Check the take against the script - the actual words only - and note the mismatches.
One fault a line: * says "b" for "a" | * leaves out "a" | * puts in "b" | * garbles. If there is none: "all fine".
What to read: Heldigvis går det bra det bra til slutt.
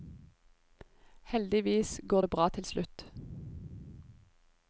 * leaves out "det bra"